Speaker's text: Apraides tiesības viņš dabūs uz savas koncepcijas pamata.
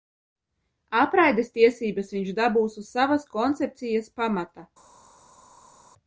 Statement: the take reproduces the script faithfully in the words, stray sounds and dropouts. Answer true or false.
true